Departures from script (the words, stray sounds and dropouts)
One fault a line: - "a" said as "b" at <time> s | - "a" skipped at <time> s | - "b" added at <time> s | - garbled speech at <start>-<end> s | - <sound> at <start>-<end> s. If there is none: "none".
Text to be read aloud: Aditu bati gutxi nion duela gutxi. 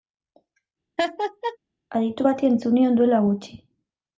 - laugh at 1.0-1.6 s
- "gutxi" said as "entzun" at 2.5 s